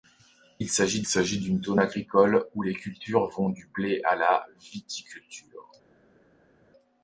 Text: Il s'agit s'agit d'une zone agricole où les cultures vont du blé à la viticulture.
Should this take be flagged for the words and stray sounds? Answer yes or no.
no